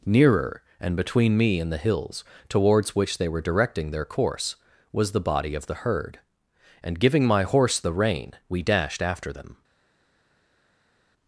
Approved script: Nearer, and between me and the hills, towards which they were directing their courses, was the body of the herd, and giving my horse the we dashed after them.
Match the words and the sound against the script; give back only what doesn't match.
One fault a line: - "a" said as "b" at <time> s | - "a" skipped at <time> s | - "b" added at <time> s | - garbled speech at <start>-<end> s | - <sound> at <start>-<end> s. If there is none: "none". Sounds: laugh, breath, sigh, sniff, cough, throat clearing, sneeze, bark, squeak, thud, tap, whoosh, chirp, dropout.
- "courses" said as "course" at 4.0 s
- "rein" added at 7.9 s